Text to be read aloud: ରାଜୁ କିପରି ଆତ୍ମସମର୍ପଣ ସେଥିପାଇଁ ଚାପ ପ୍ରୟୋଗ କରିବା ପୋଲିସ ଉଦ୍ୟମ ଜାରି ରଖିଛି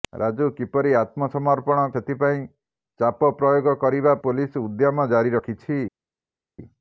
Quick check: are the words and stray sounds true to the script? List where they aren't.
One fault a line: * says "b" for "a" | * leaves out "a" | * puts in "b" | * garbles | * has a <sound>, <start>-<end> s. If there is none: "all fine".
all fine